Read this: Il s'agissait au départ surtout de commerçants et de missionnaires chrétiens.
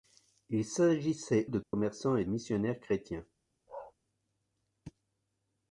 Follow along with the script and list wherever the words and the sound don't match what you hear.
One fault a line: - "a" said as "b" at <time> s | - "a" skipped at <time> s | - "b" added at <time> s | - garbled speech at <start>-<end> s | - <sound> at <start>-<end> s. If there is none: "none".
- "au départ surtout" skipped at 1.4 s
- dropout at 1.6-1.7 s
- "de" skipped at 2.2 s
- bark at 3.7-3.9 s